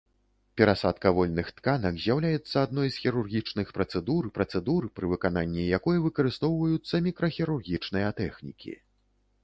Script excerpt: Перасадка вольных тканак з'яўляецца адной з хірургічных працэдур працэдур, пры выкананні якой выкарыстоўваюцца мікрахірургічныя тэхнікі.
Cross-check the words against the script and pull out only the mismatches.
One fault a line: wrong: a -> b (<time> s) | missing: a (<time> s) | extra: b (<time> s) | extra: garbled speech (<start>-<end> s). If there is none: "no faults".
no faults